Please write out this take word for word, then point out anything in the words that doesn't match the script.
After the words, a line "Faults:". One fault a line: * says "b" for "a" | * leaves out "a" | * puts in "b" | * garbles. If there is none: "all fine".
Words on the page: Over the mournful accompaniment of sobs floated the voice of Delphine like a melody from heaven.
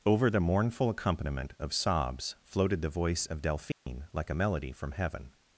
Over the mournful accompaniment of sobs floated the voice of Delphine like a melody from heaven.
Faults:
all fine